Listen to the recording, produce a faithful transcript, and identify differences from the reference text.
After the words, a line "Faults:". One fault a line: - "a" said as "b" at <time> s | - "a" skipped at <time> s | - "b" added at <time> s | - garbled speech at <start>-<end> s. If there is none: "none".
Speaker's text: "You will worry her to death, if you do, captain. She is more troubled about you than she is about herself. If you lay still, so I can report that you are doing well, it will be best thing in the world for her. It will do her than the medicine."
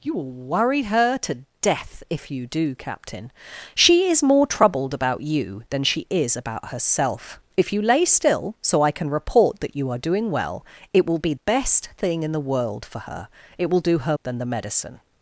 "You will worry her to death, if you do, captain. She is more troubled about you than she is about herself. If you lay still, so I can report that you are doing well, it will be best thing in the world for her. It will do her than the medicine."
Faults:
none